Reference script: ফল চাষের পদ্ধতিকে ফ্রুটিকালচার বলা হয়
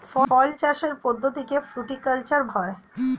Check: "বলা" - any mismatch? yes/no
yes